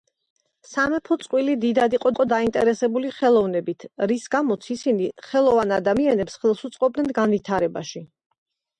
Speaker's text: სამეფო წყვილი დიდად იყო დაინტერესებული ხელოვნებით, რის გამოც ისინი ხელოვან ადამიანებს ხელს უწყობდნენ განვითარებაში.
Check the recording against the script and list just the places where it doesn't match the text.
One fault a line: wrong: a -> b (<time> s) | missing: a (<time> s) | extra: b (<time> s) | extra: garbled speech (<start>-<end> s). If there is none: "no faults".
extra: იყო (2.1 s)